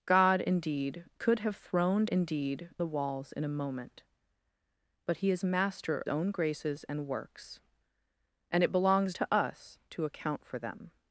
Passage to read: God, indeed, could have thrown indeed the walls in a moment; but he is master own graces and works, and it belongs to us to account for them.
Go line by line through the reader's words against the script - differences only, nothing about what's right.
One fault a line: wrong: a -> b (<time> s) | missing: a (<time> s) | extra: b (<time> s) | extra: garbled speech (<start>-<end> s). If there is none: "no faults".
no faults